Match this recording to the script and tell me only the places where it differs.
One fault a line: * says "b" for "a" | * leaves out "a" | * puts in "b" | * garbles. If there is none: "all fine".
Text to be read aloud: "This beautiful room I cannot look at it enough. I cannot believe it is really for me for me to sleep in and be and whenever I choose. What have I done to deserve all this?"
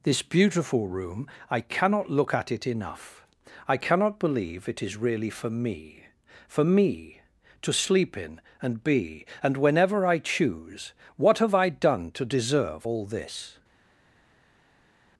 all fine